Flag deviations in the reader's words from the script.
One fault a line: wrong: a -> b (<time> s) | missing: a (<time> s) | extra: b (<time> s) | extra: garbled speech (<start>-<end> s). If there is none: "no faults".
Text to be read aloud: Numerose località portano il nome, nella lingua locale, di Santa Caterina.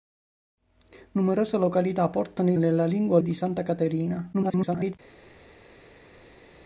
missing: nome (2.6 s)
missing: locale (3.2 s)
extra: garbled speech (4.3-4.9 s)